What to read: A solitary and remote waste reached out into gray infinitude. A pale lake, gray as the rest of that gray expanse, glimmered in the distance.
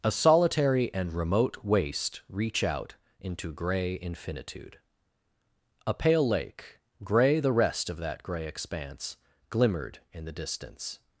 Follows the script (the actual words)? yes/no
no